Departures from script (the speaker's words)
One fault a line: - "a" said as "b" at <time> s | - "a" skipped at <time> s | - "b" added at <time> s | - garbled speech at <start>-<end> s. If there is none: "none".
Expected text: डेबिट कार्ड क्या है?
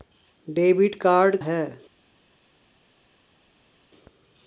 - "क्या" skipped at 1.4 s